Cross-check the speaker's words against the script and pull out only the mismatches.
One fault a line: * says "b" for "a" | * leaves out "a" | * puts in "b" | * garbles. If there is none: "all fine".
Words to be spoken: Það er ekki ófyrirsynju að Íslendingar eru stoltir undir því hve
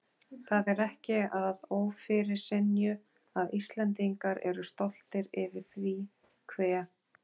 * puts in "að"
* says "yfir" for "undir"